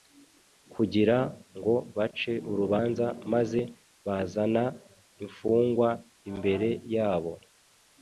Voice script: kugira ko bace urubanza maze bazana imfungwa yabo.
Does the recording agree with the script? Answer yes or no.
no